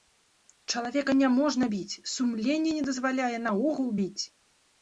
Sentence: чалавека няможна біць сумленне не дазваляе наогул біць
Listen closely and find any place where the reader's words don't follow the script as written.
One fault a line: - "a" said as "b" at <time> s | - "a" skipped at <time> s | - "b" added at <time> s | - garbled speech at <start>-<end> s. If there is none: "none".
none